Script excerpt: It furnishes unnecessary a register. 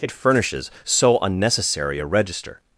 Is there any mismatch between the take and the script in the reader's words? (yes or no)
yes